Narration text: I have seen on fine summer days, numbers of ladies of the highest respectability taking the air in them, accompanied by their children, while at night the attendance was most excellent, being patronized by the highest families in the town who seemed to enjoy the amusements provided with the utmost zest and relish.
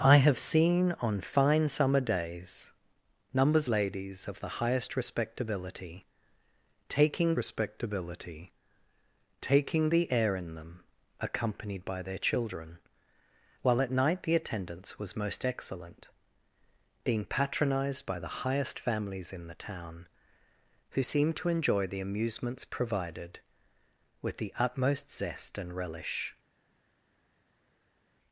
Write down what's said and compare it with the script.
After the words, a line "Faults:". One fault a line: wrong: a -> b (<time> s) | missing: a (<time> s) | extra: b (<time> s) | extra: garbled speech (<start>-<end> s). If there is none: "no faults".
I have seen on fine summer days, numbers ladies of the highest respectability taking respectability taking the air in them, accompanied by their children, while at night the attendance was most excellent, being patronized by the highest families in the town who seemed to enjoy the amusements provided with the utmost zest and relish.
Faults:
missing: of (3.7 s)
extra: respectability taking (7.4 s)